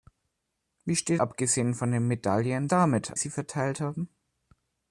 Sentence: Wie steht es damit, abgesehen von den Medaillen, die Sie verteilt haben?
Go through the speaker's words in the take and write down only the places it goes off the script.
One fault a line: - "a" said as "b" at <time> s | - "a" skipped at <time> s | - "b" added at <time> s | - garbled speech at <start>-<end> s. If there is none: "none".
- "es damit" skipped at 1.2 s
- "die" said as "damit" at 2.7 s